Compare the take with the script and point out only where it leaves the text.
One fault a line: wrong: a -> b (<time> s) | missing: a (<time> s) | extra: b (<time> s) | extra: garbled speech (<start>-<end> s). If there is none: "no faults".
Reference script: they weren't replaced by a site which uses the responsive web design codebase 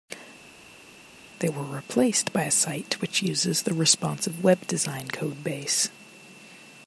wrong: weren't -> were (1.5 s)